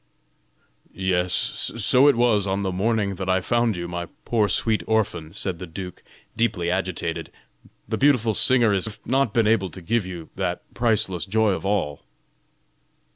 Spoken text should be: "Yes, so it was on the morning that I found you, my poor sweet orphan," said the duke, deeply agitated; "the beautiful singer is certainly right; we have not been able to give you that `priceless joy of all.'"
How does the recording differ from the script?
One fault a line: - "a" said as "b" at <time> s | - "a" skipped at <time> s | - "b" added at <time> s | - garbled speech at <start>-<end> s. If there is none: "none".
- "certainly right we" skipped at 8.9 s